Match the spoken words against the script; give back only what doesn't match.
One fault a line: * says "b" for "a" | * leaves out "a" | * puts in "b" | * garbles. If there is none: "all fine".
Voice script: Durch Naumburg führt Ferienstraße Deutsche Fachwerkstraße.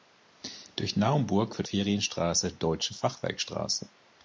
all fine